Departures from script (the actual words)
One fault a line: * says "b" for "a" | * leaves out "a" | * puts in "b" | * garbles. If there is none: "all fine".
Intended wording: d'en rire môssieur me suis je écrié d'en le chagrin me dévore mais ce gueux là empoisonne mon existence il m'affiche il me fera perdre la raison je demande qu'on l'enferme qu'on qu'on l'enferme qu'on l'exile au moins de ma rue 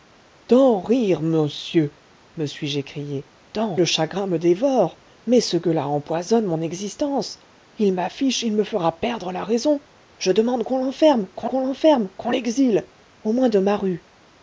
all fine